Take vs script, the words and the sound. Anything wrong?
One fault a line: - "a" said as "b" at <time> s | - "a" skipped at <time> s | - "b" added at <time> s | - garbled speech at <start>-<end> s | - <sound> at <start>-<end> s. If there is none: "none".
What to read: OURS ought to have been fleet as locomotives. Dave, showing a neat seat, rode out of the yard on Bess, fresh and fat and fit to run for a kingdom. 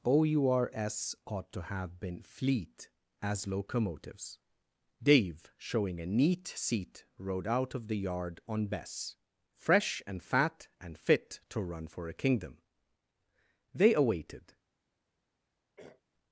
- "They awaited" added at 13.7 s
- throat clearing at 15.8-16.0 s